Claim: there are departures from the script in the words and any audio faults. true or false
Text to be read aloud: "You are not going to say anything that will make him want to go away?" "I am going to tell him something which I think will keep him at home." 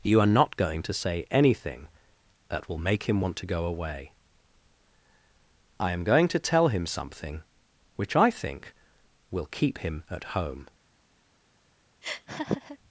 true